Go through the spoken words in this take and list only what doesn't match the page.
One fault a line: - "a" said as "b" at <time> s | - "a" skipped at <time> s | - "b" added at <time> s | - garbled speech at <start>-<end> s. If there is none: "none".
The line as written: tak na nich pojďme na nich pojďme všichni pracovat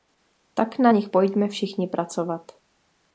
- "na nich pojďme" skipped at 1.5 s